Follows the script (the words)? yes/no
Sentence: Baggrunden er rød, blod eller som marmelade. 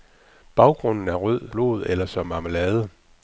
yes